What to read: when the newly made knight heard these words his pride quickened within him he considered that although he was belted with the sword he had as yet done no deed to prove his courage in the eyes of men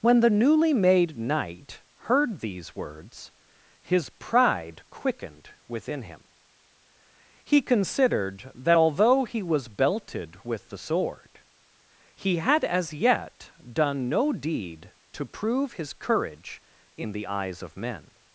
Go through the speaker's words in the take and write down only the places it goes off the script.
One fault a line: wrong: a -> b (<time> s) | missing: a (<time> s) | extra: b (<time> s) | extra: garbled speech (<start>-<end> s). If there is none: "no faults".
no faults